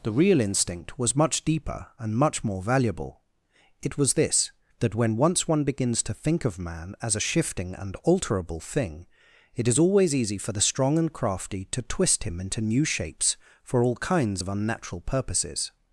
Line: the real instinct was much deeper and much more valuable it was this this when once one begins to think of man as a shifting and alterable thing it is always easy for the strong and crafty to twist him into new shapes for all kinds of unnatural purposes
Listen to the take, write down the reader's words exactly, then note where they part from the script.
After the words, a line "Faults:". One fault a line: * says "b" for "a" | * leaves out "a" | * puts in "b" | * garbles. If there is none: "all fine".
the real instinct was much deeper and much more valuable it was this that when once one begins to think of man as a shifting and alterable thing it is always easy for the strong and crafty to twist him into new shapes for all kinds of unnatural purposes
Faults:
* says "that" for "this"